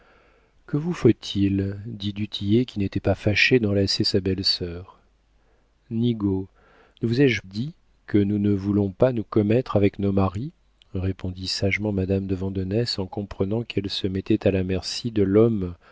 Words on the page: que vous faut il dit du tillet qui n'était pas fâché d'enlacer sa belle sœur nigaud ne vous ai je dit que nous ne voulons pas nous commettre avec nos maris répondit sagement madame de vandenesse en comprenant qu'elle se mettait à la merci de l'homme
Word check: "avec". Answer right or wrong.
right